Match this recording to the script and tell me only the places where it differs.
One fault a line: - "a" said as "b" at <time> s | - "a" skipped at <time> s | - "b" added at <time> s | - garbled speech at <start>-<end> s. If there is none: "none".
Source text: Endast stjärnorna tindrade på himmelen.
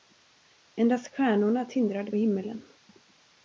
- "på" skipped at 2.1 s